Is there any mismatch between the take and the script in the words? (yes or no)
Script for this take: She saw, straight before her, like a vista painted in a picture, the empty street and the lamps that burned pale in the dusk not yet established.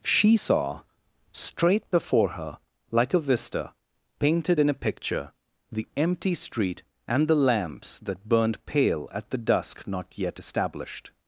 yes